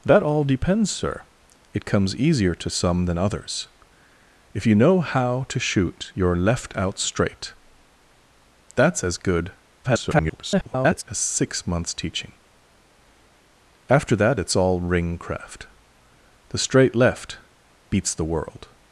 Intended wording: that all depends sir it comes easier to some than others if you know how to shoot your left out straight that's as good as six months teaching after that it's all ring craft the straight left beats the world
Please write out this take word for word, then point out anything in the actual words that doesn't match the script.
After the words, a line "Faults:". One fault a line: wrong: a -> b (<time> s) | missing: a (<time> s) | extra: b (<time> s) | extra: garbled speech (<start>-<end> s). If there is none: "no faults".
that all depends sir it comes easier to some than others if you know how to shoot your left out straight that's as good [garbled] as six months teaching after that it's all ring craft the straight left beats the world
Faults:
extra: garbled speech (9.8-11.0 s)